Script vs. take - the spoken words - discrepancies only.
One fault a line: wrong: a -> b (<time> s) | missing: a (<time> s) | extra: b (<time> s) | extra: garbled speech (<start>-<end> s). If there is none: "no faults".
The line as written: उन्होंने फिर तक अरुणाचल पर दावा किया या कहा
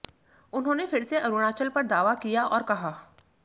wrong: तक -> से (1.0 s)
wrong: या -> और (2.5 s)